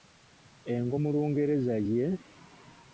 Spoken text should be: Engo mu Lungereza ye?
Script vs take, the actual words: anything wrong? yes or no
no